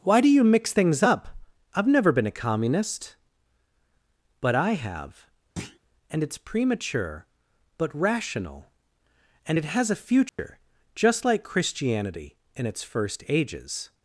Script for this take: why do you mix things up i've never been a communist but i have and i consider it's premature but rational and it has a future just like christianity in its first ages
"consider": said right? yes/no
no